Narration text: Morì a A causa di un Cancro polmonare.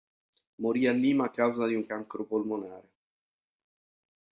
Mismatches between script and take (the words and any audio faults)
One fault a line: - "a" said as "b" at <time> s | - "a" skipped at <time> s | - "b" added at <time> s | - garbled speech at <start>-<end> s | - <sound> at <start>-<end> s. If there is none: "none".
- "Lima" added at 0.9 s